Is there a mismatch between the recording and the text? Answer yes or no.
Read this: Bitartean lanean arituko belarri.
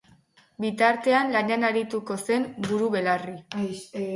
yes